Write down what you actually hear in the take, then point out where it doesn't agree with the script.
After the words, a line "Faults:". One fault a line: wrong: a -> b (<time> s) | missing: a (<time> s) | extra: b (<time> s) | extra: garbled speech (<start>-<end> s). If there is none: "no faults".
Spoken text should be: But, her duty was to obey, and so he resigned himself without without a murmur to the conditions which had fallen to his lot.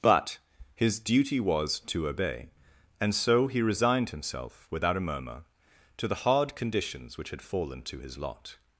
But, his duty was to obey, and so he resigned himself without a murmur to the hard conditions which had fallen to his lot.
Faults:
wrong: her -> his (0.7 s)
missing: without (5.0 s)
extra: hard (6.2 s)